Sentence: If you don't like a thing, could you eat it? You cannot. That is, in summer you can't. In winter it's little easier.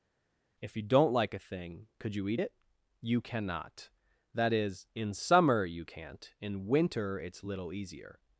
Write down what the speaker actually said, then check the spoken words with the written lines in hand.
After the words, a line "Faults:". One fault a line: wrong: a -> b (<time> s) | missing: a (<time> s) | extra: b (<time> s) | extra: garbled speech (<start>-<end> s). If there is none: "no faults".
If you don't like a thing, could you eat it? You cannot. That is, in summer you can't. In winter it's little easier.
Faults:
no faults